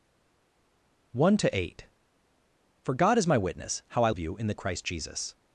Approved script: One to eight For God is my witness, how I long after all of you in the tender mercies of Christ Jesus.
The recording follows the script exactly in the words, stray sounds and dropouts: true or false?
false